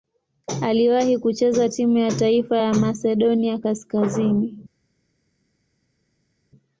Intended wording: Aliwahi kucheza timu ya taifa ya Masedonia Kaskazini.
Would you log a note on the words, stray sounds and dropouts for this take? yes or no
no